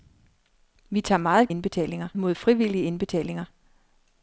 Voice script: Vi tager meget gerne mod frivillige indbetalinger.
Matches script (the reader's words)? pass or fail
fail